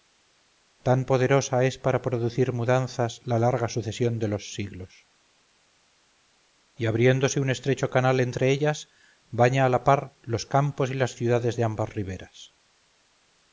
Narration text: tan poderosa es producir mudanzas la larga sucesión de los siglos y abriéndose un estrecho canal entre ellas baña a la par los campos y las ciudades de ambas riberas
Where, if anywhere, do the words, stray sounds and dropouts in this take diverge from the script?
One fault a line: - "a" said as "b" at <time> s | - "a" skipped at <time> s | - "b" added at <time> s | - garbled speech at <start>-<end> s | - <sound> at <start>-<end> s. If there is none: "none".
- "para" added at 1.8 s